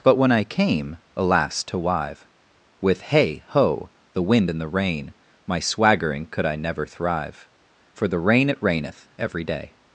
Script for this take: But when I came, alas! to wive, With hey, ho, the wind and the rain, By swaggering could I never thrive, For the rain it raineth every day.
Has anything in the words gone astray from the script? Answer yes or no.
yes